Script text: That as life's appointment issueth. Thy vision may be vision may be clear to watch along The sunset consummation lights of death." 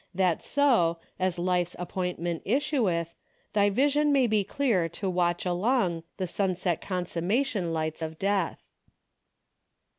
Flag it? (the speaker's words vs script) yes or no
yes